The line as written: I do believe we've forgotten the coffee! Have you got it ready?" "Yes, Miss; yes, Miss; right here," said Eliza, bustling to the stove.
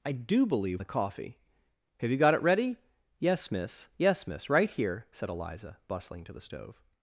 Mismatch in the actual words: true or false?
true